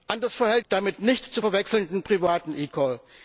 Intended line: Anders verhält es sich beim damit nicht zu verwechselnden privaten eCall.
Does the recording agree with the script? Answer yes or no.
no